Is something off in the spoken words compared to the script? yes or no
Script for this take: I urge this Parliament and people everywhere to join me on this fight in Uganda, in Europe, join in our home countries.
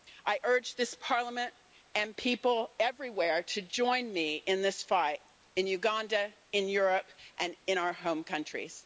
yes